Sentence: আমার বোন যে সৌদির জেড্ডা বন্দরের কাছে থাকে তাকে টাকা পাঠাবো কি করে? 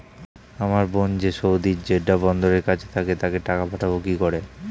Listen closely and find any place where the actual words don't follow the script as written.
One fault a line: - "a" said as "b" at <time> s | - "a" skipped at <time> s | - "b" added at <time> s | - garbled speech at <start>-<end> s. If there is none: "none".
none